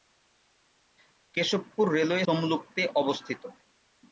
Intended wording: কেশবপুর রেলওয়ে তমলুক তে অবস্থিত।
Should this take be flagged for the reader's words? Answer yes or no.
no